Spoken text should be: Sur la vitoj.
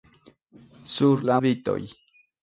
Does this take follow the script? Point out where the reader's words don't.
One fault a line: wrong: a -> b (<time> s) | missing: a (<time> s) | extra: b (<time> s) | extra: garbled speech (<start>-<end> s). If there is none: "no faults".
no faults